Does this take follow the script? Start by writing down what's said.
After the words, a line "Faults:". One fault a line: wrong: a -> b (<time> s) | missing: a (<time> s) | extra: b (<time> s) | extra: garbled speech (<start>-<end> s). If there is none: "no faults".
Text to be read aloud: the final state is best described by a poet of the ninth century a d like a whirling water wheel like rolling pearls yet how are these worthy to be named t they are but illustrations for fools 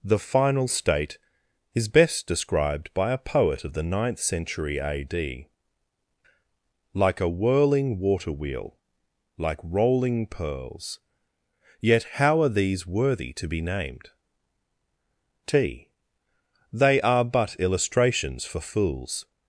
the final state is best described by a poet of the ninth century a d like a whirling water wheel like rolling pearls yet how are these worthy to be named t they are but illustrations for fools
Faults:
no faults